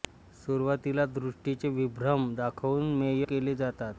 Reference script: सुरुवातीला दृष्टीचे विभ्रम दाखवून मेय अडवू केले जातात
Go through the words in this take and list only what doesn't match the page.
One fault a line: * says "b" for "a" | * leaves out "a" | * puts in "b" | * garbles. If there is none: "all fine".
* leaves out "अडवू"